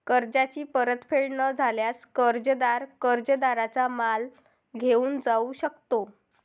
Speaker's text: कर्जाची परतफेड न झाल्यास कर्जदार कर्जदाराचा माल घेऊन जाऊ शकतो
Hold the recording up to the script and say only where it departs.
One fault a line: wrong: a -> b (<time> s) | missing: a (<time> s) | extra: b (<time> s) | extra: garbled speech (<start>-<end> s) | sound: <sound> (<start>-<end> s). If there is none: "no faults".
no faults